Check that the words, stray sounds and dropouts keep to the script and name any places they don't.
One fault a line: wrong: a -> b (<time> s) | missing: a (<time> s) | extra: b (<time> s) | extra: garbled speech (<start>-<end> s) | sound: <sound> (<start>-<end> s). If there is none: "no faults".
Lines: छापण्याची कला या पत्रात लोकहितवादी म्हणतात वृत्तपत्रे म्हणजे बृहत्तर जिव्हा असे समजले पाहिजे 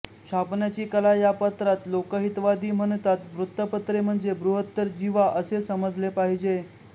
no faults